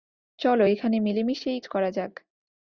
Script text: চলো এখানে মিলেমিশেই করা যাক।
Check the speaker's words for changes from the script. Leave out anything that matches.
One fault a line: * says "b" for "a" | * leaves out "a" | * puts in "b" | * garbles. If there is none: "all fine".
all fine